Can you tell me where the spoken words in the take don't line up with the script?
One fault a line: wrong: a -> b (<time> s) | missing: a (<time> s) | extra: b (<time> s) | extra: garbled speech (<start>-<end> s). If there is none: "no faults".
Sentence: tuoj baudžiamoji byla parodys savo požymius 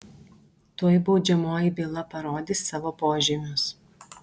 no faults